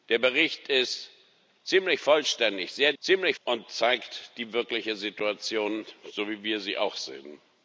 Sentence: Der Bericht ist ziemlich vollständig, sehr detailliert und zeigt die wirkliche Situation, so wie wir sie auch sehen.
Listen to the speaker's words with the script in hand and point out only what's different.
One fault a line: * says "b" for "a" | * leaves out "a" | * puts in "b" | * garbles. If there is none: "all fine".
* says "ziemlich" for "detailliert"